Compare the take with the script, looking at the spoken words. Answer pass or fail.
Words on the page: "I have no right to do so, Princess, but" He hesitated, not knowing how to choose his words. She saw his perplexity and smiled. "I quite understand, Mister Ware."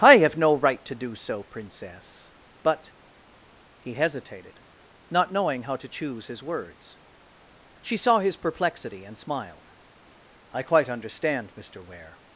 pass